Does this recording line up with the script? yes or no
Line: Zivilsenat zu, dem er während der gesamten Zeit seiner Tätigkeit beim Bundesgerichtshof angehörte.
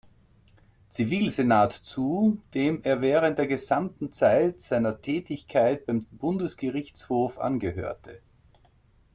yes